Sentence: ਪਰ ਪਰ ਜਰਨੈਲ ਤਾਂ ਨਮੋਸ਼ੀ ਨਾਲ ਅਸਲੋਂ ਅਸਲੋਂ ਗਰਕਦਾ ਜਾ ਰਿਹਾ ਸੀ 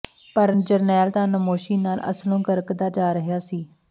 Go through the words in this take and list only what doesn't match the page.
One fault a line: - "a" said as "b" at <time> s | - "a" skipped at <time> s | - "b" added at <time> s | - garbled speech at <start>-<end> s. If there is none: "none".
- "ਪਰ" skipped at 0.5 s
- "ਅਸਲੋਂ" skipped at 2.4 s